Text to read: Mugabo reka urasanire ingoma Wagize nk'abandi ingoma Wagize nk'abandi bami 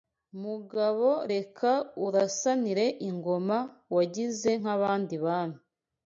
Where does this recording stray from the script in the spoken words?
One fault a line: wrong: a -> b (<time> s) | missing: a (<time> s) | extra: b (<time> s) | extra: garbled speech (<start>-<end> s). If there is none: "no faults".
missing: ingoma Wagize nk'abandi (5.1 s)